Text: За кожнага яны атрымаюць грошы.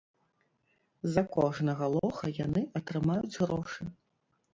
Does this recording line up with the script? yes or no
no